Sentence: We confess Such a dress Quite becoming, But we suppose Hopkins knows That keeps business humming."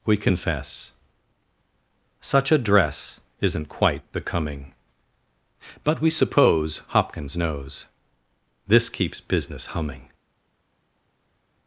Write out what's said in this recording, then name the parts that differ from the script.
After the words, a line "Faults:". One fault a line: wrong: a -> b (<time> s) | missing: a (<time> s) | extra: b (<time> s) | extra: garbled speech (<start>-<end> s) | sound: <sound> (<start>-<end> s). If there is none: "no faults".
We confess Such a dress Isn't quite becoming, But we suppose Hopkins knows This keeps business humming."
Faults:
extra: Isn't (3.4 s)
wrong: That -> This (8.7 s)